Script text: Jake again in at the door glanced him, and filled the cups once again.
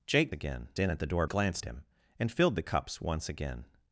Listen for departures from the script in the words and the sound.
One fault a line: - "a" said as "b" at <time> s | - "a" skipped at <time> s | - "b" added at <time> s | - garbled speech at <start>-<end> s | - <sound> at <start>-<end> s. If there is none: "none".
none